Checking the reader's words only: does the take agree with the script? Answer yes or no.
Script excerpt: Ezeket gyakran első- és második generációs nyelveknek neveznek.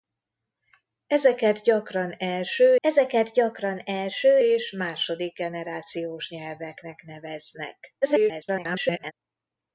no